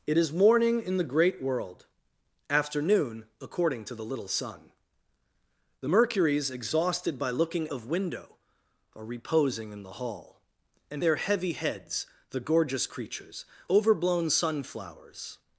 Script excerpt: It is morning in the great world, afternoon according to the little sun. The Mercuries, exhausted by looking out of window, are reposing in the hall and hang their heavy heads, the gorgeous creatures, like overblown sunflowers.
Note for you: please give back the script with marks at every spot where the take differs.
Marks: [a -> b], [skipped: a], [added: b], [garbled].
It is morning in the great world, afternoon according to the little sun. The Mercuries, exhausted by looking [skipped: out] of window, are reposing in the hall and [skipped: hang] their heavy heads, the gorgeous creatures, [skipped: like] overblown sunflowers.